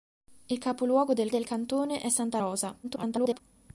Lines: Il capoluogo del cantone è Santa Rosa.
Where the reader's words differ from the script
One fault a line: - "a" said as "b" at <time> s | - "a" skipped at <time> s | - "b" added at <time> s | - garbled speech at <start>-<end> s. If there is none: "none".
- "del" added at 1.3 s
- garbled speech at 2.8-3.4 s